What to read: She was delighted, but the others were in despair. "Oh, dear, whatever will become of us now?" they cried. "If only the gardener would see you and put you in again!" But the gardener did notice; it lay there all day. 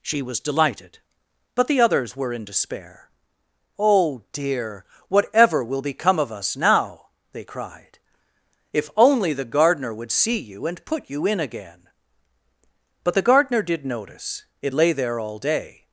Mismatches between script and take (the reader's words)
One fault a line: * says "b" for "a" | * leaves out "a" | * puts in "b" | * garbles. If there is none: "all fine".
all fine